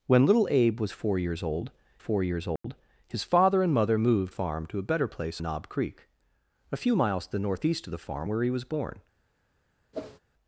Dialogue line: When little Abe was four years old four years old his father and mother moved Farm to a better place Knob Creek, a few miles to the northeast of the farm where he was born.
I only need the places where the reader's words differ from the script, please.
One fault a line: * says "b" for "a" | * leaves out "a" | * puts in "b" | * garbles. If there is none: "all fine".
all fine